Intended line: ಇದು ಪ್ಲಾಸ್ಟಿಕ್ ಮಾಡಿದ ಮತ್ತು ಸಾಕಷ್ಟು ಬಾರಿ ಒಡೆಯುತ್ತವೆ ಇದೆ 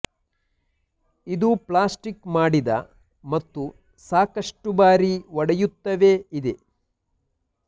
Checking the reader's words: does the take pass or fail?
pass